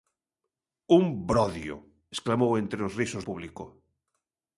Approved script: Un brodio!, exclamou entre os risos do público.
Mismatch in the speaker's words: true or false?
true